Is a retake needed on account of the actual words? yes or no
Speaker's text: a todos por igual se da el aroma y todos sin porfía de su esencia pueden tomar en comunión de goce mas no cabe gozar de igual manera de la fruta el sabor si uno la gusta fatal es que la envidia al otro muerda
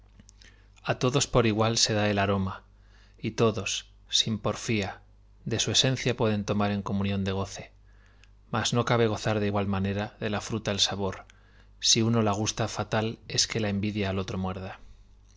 no